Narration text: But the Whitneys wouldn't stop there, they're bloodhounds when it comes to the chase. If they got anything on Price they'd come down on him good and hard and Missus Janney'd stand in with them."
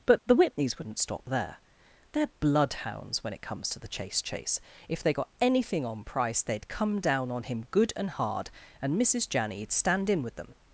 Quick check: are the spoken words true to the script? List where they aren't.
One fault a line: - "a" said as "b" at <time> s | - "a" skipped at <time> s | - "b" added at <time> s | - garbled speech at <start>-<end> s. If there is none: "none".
- "chase" added at 4.2 s